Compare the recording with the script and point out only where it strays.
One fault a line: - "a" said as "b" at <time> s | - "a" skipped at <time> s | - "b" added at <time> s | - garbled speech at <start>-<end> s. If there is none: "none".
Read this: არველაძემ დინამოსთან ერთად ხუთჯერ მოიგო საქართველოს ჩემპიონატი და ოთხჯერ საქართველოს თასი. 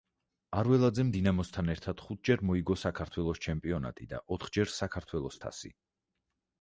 none